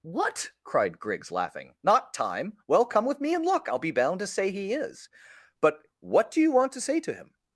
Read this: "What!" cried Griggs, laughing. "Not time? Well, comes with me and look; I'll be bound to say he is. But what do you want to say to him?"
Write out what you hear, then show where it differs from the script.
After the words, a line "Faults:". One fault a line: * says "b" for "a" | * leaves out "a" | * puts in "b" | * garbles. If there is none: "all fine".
"What!" cried Griggs, laughing. "Not time? Well, come with me and look; I'll be bound to say he is. But what do you want to say to him?"
Faults:
* says "come" for "comes"